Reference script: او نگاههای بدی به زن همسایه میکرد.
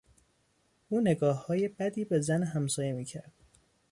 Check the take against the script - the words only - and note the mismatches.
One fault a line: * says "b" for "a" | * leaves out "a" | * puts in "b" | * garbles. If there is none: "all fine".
all fine